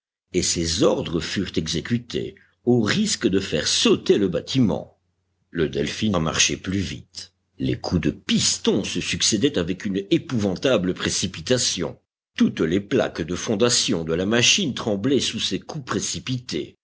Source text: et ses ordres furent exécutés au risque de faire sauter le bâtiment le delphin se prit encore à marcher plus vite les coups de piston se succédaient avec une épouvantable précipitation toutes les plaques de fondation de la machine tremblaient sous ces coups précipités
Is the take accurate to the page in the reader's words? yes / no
no